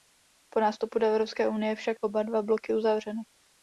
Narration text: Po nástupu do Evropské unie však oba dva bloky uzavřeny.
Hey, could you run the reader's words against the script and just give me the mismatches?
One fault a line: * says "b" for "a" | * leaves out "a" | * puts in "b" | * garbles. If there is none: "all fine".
all fine